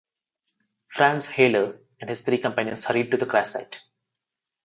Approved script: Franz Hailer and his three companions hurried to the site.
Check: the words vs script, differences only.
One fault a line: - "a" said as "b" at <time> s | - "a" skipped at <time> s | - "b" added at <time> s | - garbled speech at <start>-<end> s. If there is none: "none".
- "crash" added at 3.3 s